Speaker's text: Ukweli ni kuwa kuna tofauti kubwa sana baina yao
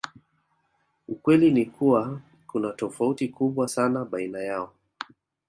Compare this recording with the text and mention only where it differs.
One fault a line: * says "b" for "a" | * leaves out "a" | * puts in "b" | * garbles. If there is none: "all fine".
all fine